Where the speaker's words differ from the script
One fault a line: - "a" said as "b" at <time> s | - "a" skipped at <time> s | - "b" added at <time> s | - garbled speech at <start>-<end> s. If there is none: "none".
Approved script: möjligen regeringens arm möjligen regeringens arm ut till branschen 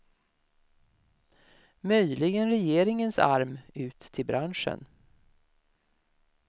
- "möjligen regeringens arm" skipped at 3.6 s